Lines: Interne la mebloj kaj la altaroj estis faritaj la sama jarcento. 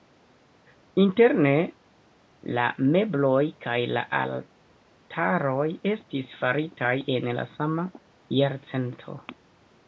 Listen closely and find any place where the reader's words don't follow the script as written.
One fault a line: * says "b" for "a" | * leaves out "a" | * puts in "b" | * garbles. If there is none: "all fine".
* puts in "en"